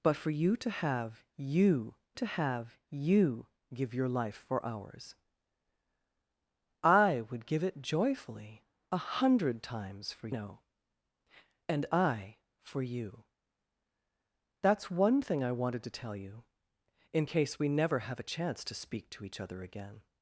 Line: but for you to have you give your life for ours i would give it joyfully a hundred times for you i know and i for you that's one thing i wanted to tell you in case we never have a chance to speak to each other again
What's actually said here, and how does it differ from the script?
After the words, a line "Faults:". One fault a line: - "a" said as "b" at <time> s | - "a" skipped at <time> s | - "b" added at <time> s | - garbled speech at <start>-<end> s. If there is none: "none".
but for you to have you to have you give your life for ours i would give it joyfully a hundred times for know and i for you that's one thing i wanted to tell you in case we never have a chance to speak to each other again
Faults:
- "to have you" added at 2.1 s
- "you i" skipped at 10.3 s